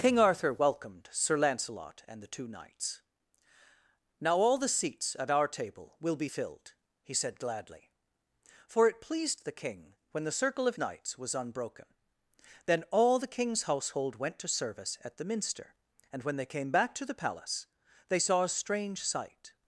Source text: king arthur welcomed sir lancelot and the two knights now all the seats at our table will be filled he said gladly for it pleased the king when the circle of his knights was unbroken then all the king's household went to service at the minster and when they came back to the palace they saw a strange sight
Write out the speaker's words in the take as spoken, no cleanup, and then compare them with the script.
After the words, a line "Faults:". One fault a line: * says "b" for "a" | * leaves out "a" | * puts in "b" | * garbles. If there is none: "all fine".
king arthur welcomed sir lancelot and the two knights now all the seats at our table will be filled he said gladly for it pleased the king when the circle of knights was unbroken then all the king's household went to service at the minster and when they came back to the palace they saw a strange sight
Faults:
* leaves out "his"